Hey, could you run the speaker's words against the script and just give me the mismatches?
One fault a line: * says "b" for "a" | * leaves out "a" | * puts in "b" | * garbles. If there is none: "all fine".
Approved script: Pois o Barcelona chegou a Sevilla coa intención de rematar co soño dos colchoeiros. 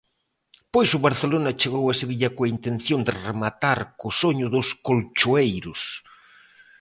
all fine